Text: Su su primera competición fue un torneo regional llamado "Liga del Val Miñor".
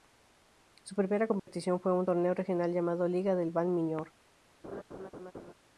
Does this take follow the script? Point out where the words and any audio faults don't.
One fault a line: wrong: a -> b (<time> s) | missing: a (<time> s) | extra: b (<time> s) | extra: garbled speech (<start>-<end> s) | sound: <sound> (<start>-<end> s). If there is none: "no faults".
missing: su (0.9 s)
sound: dropout (1.4-1.5 s)
sound: laugh (4.6-5.5 s)